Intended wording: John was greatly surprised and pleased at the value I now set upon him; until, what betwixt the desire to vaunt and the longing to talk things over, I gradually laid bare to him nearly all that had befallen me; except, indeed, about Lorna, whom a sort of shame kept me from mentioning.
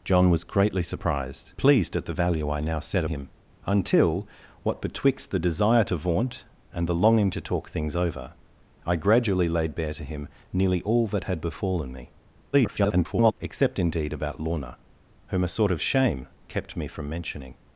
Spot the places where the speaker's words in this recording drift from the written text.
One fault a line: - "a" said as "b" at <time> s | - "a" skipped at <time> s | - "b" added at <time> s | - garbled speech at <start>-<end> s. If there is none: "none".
- "and" skipped at 1.5 s
- "upon" skipped at 3.0 s
- garbled speech at 12.5-13.3 s